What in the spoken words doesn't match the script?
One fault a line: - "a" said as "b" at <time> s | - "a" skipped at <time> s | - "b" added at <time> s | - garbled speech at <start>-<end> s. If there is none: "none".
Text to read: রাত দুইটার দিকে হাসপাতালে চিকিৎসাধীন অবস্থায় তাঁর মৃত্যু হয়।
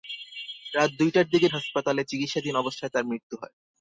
none